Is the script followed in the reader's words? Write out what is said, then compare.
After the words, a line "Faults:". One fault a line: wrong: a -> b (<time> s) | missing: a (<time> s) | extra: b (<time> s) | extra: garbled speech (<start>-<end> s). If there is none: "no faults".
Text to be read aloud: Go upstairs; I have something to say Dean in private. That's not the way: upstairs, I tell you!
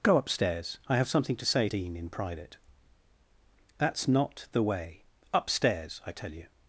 Go upstairs; I have something to say Dean in private. That's not the way: upstairs, I tell you!
Faults:
no faults